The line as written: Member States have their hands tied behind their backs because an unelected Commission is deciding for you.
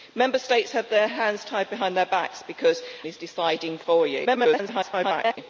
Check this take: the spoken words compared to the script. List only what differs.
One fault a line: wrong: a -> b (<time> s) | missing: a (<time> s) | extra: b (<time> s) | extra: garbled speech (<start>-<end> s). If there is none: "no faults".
missing: an unelected Commission (2.8 s)
extra: garbled speech (4.3-5.4 s)